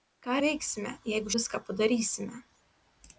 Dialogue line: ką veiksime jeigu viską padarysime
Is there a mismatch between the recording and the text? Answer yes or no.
no